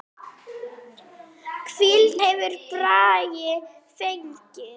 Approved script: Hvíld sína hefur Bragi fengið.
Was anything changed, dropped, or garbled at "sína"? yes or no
yes